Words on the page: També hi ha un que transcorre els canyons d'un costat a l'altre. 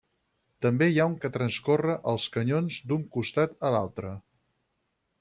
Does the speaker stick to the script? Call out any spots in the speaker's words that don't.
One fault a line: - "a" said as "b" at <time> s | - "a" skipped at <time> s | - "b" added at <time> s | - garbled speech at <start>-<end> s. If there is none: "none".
none